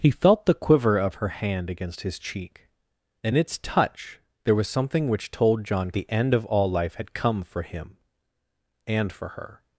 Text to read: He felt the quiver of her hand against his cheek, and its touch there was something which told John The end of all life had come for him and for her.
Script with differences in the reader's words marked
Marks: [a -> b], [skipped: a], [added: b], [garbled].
He felt the quiver of her hand against his cheek, and its touch there was something which told John The end of all life had come for him and for her.